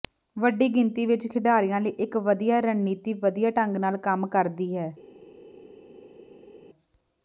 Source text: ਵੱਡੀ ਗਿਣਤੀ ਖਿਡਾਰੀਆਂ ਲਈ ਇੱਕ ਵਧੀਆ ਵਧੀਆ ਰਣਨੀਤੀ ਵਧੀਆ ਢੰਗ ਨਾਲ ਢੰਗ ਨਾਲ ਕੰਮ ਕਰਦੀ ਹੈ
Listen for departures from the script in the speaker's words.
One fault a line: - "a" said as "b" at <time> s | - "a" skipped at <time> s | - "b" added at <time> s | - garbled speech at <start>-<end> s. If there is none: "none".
- "ਵਿੱਚ" added at 1.1 s
- "ਵਧੀਆ" skipped at 2.6 s
- "ਢੰਗ ਨਾਲ" skipped at 4.0 s